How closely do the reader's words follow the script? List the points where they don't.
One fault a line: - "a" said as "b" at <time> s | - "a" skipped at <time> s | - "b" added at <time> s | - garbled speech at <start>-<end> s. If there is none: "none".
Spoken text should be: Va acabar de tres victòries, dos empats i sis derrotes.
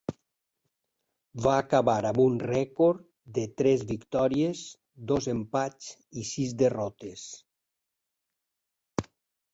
- "amb un rècord" added at 2.1 s